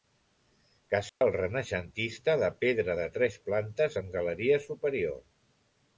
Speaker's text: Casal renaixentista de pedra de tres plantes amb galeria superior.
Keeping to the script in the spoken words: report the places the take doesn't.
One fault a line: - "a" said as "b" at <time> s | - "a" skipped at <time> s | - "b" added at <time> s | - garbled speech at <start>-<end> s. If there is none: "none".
none